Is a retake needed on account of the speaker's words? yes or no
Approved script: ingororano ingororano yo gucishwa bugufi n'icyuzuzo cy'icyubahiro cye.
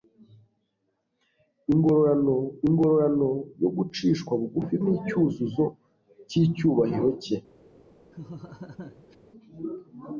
no